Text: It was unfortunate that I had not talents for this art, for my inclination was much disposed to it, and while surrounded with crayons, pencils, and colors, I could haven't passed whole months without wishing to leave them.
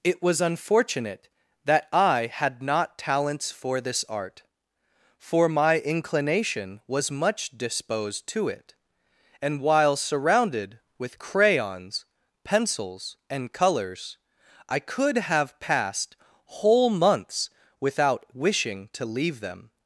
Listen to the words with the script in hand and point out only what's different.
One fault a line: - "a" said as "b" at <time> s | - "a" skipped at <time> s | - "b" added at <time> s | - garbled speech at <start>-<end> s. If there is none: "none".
- "haven't" said as "have" at 15.2 s